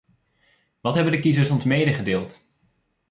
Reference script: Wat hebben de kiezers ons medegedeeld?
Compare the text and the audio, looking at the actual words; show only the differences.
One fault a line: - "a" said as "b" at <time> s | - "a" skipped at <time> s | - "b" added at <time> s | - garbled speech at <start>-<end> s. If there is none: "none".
none